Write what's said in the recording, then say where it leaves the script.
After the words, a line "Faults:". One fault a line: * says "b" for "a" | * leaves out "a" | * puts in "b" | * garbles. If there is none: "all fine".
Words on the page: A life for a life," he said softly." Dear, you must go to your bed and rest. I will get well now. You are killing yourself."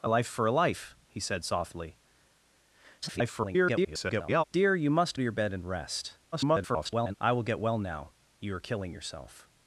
A life for a life," he said softly." [garbled] Dear, you must to your bed and rest. [garbled] I will get well now. You are killing yourself."
Faults:
* garbles
* leaves out "go"
* garbles